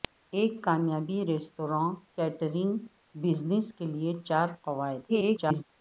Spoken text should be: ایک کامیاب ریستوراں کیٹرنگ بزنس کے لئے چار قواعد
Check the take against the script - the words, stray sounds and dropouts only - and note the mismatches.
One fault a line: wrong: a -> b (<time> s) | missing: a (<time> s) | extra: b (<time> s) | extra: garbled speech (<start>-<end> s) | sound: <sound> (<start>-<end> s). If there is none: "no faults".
extra: garbled speech (5.1-5.6 s)